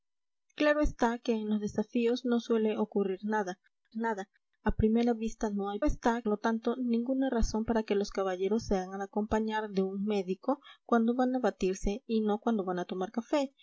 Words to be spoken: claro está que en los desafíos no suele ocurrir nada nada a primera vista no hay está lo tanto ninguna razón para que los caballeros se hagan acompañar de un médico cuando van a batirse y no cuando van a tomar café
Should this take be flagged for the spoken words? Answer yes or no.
no